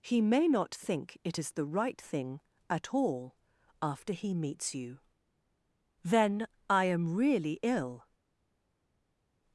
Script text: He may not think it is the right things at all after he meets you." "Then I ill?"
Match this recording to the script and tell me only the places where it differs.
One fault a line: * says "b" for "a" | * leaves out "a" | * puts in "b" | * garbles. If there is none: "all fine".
* says "thing" for "things"
* puts in "am really"